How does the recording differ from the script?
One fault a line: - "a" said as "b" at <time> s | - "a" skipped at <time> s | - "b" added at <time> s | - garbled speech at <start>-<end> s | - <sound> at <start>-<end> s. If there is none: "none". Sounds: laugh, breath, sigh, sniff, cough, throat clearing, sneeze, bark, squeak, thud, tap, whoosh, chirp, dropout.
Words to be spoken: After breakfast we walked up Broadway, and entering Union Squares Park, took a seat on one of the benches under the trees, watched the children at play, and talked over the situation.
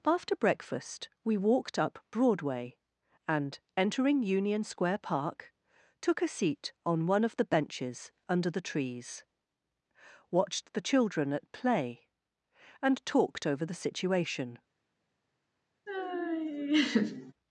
- "Squares" said as "Square" at 4.6 s
- laugh at 15.9-17.3 s